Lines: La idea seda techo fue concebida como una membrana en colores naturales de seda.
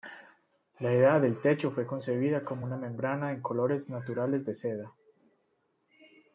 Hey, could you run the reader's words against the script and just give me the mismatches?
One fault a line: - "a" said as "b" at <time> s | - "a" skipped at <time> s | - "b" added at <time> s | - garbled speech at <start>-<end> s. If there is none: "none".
- "seda" said as "del" at 1.2 s